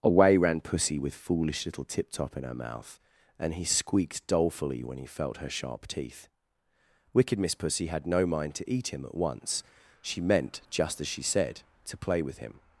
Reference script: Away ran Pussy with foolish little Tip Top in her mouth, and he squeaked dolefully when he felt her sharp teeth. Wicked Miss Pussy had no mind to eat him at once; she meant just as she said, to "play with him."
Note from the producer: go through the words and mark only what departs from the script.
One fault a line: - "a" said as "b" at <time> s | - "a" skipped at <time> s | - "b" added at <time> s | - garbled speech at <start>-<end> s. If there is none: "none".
none